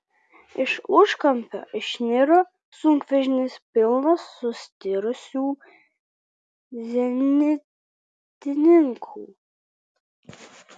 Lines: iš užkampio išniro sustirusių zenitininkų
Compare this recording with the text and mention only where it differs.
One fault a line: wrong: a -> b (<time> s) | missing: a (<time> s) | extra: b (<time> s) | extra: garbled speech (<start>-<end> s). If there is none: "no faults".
extra: sunkvežimis pilnas (2.8 s)